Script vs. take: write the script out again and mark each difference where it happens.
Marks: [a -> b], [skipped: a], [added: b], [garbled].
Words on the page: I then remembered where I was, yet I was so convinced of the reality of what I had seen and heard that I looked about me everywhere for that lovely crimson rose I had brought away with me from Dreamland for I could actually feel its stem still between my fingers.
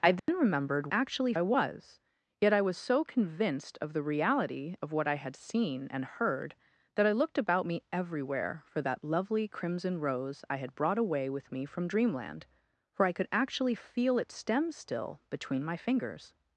I then remembered [where -> actually] I was, yet I was so convinced of the reality of what I had seen and heard that I looked about me everywhere for that lovely crimson rose I had brought away with me from Dreamland for I could actually feel its stem still between my fingers.